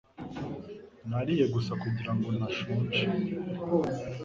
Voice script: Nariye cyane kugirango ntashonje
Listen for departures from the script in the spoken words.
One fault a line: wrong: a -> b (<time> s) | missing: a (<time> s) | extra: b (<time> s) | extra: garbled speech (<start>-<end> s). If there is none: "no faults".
wrong: cyane -> gusa (1.5 s)